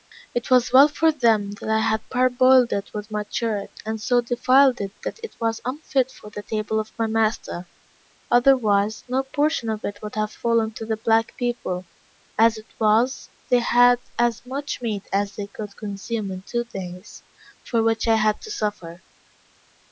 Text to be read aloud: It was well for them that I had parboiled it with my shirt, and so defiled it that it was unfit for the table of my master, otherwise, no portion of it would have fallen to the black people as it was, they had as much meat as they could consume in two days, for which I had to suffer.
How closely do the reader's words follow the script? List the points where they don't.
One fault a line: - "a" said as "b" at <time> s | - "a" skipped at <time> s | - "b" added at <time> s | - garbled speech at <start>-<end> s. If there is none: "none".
none